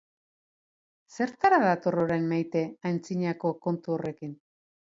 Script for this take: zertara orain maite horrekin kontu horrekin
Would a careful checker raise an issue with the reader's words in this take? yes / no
yes